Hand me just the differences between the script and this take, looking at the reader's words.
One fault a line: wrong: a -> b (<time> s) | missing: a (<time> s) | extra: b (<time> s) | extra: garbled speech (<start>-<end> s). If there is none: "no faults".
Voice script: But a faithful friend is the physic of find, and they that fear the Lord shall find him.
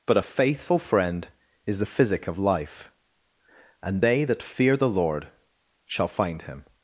wrong: find -> life (2.4 s)